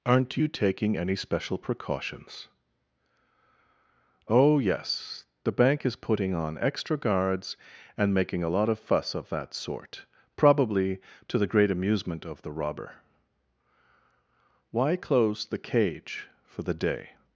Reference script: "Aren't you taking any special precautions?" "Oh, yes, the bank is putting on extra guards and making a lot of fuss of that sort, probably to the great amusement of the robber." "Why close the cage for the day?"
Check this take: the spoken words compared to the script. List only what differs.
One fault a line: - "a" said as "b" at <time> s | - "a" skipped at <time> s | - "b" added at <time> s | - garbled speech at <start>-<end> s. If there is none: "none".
none